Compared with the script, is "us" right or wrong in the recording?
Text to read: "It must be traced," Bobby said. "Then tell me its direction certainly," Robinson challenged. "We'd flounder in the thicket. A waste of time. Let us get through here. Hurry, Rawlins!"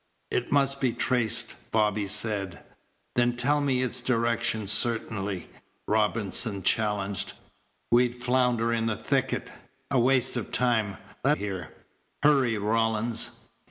wrong